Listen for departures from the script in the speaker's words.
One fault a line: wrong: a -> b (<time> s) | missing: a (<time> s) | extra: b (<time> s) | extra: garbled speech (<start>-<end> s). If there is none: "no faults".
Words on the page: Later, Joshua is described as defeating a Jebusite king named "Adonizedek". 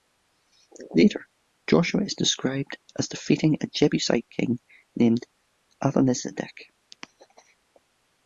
no faults